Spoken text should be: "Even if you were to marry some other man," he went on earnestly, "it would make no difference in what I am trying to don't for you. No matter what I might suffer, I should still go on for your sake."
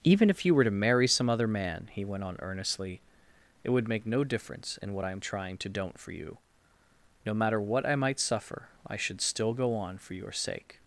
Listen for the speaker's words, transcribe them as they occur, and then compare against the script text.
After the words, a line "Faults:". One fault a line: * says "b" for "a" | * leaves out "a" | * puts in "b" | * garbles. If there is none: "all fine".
"Even if you were to marry some other man," he went on earnestly, "it would make no difference in what I am trying to don't for you. No matter what I might suffer, I should still go on for your sake."
Faults:
all fine